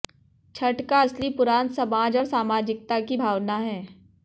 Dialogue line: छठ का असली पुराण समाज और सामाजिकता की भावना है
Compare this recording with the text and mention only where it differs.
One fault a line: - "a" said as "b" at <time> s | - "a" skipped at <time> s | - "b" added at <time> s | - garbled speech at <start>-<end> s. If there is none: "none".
none